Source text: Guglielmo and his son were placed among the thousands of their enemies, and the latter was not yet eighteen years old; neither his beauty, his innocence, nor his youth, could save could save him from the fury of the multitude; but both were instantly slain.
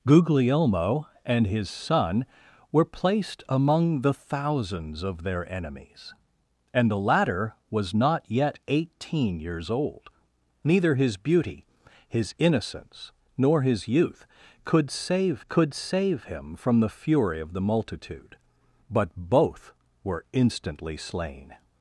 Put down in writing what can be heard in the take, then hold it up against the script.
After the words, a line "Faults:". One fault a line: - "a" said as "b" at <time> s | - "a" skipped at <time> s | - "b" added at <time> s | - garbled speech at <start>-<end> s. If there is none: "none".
Guglielmo and his son were placed among the thousands of their enemies, and the latter was not yet eighteen years old; neither his beauty, his innocence, nor his youth, could save could save him from the fury of the multitude; but both were instantly slain.
Faults:
none